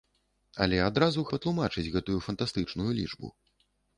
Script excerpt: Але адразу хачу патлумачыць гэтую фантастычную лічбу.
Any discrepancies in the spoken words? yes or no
yes